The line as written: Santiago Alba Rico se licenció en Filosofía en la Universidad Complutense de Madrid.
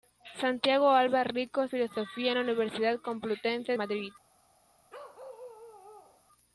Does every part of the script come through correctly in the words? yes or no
no